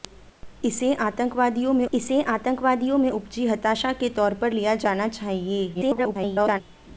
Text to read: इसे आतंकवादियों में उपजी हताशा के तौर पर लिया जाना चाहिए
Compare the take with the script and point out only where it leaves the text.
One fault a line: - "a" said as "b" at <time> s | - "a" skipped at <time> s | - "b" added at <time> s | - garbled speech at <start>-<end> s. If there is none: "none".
- "इसे आतंकवादियों में" added at 1.9 s
- garbled speech at 5.7-6.6 s